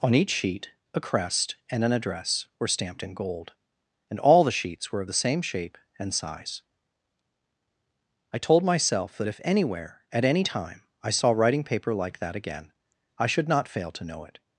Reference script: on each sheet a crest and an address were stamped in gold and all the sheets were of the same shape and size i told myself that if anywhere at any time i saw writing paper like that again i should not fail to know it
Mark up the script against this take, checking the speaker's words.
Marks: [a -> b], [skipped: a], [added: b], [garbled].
on each sheet a crest and an address were stamped in gold and all the sheets were of the same shape and size i told myself that if anywhere at any time i saw writing paper like that again i should not fail to know it